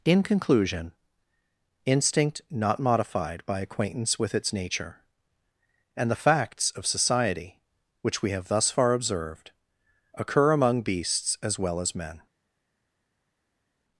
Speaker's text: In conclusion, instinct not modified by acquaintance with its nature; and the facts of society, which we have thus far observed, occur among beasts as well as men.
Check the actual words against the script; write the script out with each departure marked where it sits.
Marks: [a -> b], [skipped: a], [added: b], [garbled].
In conclusion, instinct not modified by acquaintance with its nature; and the facts of society, which we have thus far observed, occur among beasts as well as men.